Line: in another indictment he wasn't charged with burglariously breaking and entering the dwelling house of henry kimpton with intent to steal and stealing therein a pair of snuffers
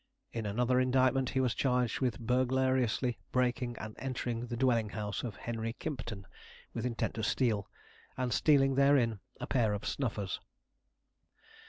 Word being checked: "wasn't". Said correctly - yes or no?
no